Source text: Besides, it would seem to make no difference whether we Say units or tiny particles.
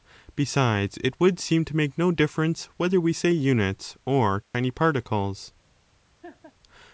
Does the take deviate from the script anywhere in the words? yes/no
no